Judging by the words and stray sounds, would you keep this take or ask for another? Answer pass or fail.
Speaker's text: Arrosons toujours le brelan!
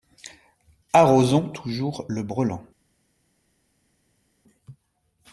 pass